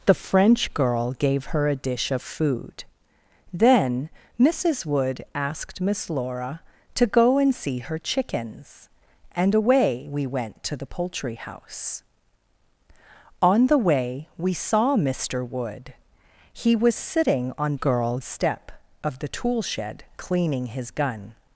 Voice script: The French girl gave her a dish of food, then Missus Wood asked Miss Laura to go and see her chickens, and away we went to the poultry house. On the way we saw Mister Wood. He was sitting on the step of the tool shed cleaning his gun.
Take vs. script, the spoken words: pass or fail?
fail